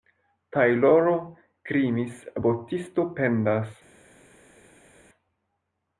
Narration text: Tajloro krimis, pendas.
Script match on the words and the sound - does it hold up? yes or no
no